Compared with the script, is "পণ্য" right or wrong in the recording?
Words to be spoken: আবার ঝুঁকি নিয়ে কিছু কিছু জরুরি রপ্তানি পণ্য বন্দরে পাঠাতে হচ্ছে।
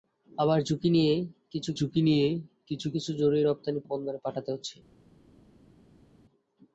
wrong